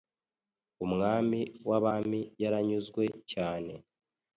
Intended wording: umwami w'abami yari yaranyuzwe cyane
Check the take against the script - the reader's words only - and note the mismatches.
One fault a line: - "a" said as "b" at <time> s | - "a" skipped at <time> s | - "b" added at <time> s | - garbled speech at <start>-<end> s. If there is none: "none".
- "yari" skipped at 2.2 s